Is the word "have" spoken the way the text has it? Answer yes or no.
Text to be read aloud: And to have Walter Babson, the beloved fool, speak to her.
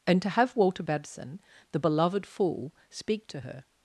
yes